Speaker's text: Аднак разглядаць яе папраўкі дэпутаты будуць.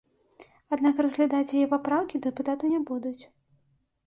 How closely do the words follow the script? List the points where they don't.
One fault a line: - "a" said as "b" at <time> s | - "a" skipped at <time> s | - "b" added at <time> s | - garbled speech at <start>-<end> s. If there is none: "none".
- "не" added at 2.7 s